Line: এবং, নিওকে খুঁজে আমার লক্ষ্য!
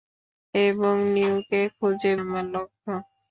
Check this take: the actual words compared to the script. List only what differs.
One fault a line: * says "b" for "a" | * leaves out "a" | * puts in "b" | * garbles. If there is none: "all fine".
all fine